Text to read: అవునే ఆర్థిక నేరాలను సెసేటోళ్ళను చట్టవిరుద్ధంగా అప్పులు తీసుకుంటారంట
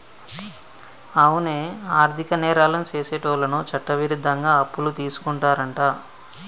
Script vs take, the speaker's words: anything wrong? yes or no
no